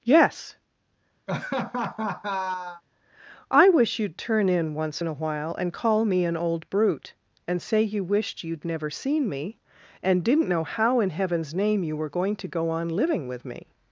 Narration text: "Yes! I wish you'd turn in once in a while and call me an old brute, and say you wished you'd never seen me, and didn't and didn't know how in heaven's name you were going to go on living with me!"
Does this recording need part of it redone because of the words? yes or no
yes